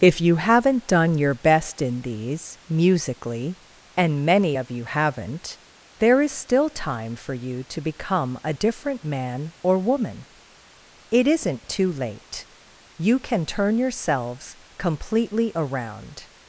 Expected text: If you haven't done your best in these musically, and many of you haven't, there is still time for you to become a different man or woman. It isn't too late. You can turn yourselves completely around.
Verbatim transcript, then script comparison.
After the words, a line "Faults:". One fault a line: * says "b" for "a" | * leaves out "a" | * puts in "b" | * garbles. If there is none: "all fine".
If you haven't done your best in these musically, and many of you haven't, there is still time for you to become a different man or woman. It isn't too late. You can turn yourselves completely around.
Faults:
all fine